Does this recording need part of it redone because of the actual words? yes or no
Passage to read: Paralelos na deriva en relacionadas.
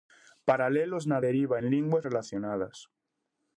yes